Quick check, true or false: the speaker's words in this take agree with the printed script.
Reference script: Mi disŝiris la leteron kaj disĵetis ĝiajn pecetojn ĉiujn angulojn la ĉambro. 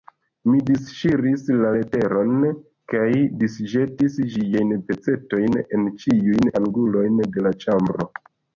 false